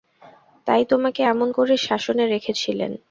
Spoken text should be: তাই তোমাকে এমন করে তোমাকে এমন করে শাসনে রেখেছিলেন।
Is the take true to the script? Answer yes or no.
no